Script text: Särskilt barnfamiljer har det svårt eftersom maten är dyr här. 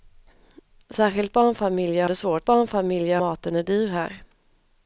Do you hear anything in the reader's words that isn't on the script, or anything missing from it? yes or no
yes